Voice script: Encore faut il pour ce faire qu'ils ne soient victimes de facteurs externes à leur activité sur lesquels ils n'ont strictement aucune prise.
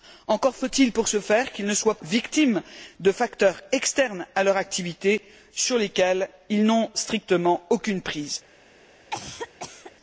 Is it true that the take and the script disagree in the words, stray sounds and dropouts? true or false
true